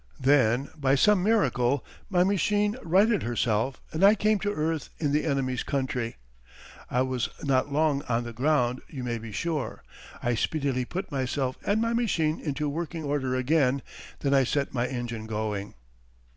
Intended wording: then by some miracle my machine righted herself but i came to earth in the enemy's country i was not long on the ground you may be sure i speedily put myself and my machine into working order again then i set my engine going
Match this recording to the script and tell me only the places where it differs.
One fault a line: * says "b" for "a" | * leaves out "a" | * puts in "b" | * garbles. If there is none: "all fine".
* says "and" for "but"